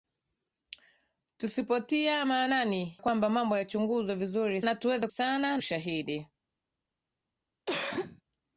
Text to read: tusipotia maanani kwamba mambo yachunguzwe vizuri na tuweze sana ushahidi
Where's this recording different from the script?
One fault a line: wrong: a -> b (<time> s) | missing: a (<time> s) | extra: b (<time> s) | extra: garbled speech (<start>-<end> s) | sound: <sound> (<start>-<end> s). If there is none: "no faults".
sound: cough (7.7-8.2 s)